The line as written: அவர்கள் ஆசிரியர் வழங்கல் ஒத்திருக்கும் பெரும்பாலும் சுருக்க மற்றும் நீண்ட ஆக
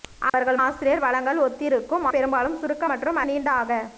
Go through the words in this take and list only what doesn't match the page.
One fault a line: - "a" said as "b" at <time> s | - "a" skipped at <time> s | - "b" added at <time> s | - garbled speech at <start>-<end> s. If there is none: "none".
none